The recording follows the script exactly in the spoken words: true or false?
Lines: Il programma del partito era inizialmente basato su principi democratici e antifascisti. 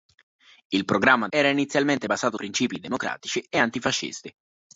false